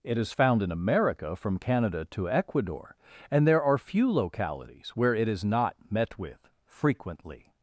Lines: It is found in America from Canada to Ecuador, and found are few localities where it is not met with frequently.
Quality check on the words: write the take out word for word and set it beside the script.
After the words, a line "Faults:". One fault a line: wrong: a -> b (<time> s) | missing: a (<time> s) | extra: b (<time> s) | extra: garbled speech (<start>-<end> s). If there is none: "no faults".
It is found in America from Canada to Ecuador, and there are few localities where it is not met with frequently.
Faults:
wrong: found -> there (3.5 s)